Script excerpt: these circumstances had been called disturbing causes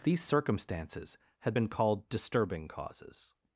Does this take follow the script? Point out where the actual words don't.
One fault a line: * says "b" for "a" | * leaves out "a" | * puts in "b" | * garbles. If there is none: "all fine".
all fine